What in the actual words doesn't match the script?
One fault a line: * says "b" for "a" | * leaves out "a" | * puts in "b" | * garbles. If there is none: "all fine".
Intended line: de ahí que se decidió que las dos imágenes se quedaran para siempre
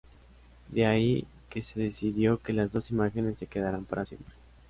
all fine